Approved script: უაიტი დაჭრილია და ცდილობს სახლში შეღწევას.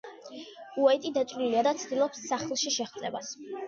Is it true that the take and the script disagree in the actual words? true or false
false